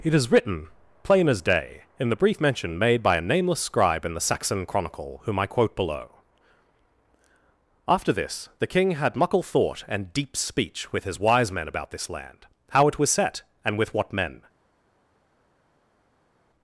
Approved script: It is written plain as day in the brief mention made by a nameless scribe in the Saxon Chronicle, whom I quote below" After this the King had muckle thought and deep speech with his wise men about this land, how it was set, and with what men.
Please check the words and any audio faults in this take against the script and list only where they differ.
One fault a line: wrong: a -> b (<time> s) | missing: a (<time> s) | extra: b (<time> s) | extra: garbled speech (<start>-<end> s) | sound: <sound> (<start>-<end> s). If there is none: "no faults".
no faults